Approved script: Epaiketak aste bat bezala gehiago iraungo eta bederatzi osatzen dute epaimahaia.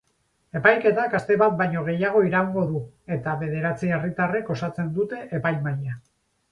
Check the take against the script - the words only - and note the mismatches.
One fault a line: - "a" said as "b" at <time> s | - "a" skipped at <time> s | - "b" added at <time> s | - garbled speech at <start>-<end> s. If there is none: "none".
- "bezala" said as "baino" at 1.6 s
- "du" added at 2.7 s
- "herritarrek" added at 4.0 s